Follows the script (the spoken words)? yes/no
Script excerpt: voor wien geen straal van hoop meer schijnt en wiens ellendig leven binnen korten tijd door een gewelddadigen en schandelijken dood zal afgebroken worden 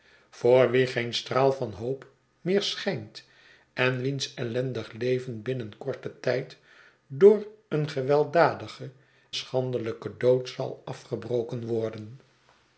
no